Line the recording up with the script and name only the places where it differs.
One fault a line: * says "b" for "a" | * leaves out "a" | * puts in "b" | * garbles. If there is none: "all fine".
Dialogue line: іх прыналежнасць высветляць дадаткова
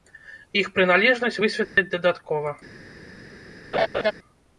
all fine